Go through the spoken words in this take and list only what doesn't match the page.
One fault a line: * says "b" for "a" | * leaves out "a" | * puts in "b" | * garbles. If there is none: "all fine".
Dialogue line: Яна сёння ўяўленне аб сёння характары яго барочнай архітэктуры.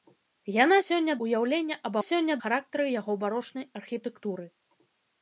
all fine